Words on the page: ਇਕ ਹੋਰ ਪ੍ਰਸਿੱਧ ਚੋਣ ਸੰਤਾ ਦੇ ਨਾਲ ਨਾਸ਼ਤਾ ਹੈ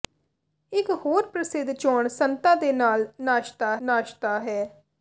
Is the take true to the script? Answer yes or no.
no